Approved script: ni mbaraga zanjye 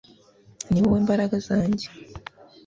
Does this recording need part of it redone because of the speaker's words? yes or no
yes